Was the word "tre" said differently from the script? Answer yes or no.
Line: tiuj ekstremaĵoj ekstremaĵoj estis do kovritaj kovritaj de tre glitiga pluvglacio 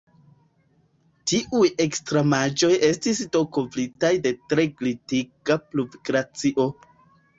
no